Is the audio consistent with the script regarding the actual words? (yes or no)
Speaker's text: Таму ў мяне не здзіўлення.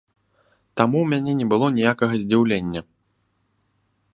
no